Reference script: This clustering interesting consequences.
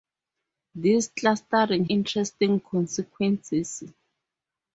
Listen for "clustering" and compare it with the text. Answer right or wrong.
right